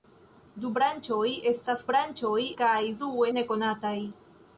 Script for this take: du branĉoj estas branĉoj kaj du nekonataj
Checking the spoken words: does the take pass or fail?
pass